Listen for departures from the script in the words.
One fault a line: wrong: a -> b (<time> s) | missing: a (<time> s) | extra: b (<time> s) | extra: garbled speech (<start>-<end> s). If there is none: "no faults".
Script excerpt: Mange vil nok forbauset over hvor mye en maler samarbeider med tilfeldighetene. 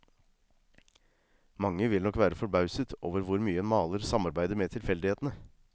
extra: være (2.2 s)